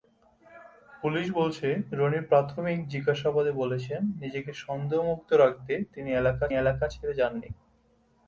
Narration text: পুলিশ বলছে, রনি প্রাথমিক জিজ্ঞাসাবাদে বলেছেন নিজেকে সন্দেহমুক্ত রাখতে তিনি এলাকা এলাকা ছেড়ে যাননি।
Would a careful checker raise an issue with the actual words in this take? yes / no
no